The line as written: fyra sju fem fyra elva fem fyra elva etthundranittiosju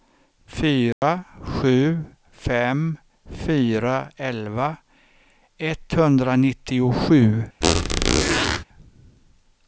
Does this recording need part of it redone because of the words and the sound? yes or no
yes